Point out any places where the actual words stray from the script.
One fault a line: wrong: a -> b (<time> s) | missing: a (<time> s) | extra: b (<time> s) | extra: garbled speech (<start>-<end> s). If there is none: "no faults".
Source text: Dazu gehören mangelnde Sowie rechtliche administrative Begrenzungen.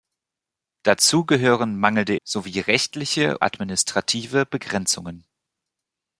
no faults